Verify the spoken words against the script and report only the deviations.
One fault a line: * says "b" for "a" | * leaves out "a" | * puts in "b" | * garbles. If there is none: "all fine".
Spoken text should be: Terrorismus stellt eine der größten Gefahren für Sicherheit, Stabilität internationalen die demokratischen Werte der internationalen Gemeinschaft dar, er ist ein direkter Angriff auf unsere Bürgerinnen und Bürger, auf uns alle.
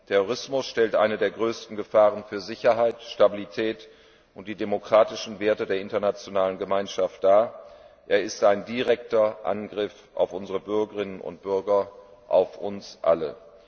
* says "und" for "internationalen"